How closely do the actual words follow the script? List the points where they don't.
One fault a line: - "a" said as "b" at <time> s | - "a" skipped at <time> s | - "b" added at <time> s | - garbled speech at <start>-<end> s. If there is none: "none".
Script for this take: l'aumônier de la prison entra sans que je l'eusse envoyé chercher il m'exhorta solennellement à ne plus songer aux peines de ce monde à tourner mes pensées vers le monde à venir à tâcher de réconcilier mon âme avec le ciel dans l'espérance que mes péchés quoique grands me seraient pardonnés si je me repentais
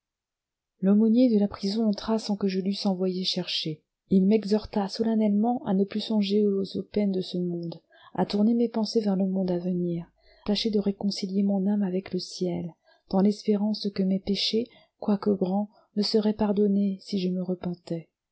- "à" skipped at 10.1 s